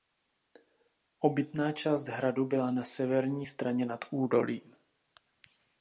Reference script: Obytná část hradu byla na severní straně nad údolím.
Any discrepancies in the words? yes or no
no